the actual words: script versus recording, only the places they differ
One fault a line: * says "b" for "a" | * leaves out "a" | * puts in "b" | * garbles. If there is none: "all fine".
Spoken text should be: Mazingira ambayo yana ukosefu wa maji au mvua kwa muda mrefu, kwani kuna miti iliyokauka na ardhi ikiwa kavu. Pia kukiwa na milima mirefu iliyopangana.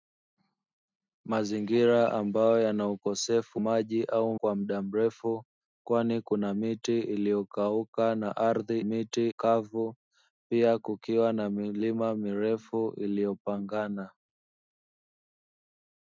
* leaves out "wa"
* leaves out "mvua"
* says "miti" for "ikiwa"